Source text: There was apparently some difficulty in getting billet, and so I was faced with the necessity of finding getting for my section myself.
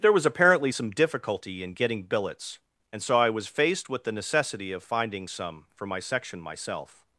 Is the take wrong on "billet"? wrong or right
wrong